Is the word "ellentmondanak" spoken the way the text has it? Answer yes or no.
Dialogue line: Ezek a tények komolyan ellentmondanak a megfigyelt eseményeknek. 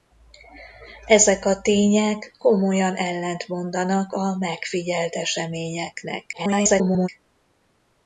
yes